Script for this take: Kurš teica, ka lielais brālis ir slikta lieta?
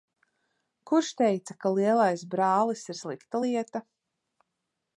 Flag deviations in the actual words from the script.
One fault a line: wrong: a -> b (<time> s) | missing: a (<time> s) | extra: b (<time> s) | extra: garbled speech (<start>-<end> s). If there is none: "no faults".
no faults